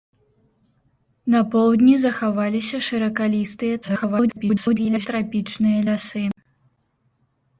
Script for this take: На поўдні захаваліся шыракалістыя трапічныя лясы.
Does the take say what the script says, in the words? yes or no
no